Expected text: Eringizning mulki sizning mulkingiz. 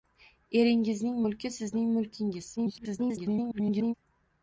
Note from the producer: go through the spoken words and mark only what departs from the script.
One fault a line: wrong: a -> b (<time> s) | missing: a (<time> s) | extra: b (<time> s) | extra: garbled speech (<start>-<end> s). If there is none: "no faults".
extra: garbled speech (2.6-3.9 s)